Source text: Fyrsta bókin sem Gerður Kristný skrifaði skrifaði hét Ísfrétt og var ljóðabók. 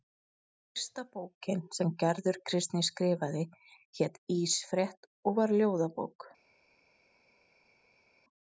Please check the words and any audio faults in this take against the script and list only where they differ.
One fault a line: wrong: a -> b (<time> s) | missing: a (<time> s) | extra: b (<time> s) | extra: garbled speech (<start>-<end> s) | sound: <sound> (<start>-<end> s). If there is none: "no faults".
missing: skrifaði (3.4 s)